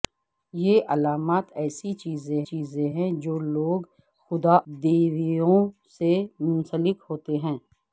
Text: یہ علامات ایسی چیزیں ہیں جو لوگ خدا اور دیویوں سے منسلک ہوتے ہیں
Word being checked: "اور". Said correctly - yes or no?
no